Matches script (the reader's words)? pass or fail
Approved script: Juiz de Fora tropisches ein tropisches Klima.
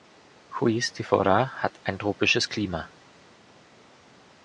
fail